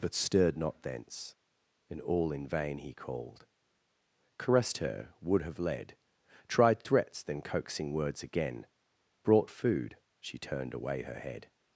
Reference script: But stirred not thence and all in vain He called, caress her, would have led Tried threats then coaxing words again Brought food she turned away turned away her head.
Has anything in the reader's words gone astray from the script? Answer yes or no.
yes